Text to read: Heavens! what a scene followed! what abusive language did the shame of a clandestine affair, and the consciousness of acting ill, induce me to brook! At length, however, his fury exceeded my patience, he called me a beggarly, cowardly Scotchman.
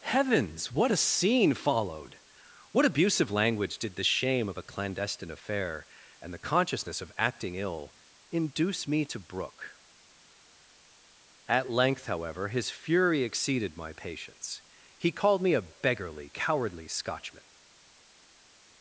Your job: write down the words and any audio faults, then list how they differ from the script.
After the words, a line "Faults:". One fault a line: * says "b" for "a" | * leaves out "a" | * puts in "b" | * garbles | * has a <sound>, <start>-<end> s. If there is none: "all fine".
Heavens! what a scene followed! what abusive language did the shame of a clandestine affair, and the consciousness of acting ill, induce me to brook! At length, however, his fury exceeded my patience, he called me a beggarly, cowardly Scotchman.
Faults:
all fine